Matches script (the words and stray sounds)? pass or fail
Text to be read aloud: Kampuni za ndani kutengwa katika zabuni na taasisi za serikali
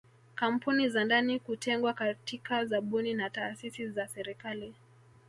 pass